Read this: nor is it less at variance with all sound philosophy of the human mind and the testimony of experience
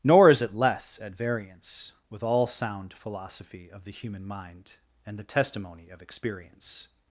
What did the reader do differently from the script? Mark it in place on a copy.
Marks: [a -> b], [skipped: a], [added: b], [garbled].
nor is it less at variance with all sound philosophy of the human mind and the testimony of experience